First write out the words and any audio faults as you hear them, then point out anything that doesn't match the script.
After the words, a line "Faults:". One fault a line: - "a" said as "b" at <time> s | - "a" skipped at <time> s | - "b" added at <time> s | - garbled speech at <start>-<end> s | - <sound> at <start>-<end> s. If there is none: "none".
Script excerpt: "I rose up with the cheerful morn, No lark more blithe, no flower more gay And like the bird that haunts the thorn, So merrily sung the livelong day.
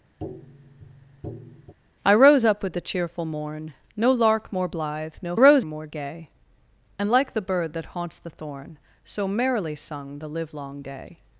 "I rose up with the cheerful morn, No lark more blithe, no rose more gay And like the bird that haunts the thorn, So merrily sung the livelong day.
Faults:
- tap at 0.2-1.7 s
- "flower" said as "rose" at 5.3 s